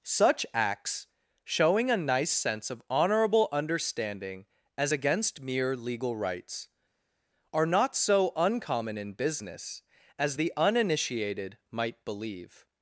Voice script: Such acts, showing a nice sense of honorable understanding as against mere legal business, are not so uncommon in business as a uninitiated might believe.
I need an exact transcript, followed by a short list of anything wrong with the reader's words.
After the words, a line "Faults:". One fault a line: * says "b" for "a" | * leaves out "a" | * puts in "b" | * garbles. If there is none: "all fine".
Such acts, showing a nice sense of honorable understanding as against mere legal rights, are not so uncommon in business as the uninitiated might believe.
Faults:
* says "rights" for "business"
* says "the" for "a"